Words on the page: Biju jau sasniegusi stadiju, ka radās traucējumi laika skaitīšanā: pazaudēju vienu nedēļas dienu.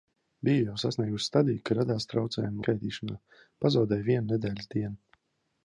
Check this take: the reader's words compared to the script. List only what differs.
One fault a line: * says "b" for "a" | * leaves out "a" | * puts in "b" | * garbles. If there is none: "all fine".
* leaves out "laika"